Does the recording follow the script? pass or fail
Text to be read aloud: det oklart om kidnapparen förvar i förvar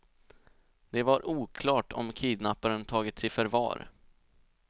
fail